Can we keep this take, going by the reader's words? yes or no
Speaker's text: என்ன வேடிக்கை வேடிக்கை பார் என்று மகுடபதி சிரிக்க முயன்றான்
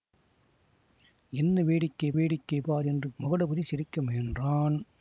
yes